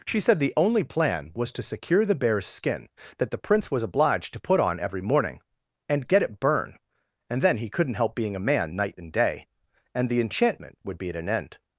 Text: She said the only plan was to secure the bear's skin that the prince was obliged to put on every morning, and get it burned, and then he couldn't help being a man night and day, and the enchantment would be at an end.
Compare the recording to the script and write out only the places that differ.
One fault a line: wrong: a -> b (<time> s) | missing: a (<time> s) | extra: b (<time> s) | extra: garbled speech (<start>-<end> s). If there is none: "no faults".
wrong: burned -> burn (6.4 s)